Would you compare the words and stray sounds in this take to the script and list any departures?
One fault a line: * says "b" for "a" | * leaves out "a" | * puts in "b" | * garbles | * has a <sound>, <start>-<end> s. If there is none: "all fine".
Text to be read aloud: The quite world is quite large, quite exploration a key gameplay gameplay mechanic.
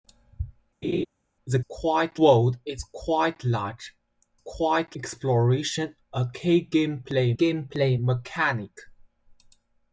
* has a laugh, 0.8-1.1 s